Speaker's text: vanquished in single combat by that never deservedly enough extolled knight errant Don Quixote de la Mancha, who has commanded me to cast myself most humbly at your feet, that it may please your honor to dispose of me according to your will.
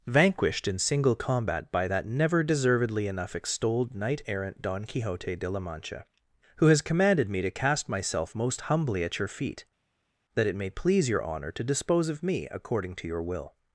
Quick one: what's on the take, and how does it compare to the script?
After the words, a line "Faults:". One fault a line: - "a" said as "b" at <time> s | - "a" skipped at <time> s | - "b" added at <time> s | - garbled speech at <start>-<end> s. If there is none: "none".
vanquished in single combat by that never deservedly enough extolled knight errant Don Quixote de la Mancha, who has commanded me to cast myself most humbly at your feet, that it may please your honor to dispose of me according to your will.
Faults:
none